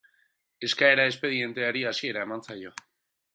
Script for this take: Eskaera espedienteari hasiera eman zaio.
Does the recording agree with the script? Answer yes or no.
yes